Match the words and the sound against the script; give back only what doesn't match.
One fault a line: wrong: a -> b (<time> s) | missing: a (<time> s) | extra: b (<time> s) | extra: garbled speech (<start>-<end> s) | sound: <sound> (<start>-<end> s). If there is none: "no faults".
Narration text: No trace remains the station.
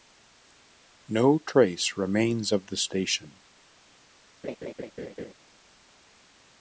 extra: of (2.5 s)
sound: laugh (4.4-5.3 s)